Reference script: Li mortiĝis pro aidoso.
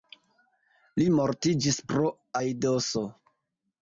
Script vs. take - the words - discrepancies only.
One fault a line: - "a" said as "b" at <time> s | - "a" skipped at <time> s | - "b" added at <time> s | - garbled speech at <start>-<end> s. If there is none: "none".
none